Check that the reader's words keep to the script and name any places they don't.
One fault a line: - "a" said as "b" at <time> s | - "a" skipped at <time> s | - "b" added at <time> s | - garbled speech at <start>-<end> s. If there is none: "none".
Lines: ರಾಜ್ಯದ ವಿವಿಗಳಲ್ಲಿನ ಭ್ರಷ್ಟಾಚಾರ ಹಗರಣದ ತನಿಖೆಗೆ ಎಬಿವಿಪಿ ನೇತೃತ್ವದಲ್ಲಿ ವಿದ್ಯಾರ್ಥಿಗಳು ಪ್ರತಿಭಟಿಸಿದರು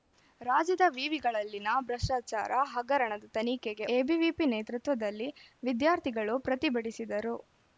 none